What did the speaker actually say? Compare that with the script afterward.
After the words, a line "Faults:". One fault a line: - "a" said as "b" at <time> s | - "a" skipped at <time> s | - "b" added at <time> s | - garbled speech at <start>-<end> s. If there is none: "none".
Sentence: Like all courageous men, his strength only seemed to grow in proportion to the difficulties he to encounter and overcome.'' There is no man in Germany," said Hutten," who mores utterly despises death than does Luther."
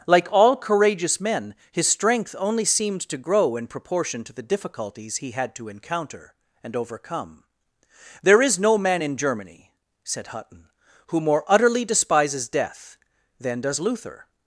Like all courageous men, his strength only seemed to grow in proportion to the difficulties he had to encounter and overcome.'' There is no man in Germany," said Hutten," who more utterly despises death than does Luther."
Faults:
- "had" added at 5.3 s
- "mores" said as "more" at 11.2 s